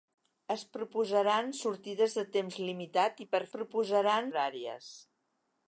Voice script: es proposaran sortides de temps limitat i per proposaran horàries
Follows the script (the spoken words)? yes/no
yes